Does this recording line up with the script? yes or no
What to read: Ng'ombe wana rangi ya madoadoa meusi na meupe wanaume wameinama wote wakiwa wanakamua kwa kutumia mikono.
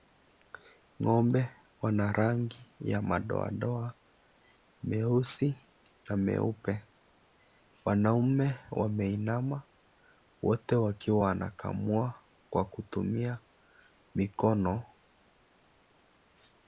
yes